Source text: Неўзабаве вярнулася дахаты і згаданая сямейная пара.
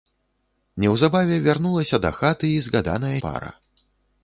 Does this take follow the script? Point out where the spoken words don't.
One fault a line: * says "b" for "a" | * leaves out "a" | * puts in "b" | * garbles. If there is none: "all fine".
* leaves out "сямейная"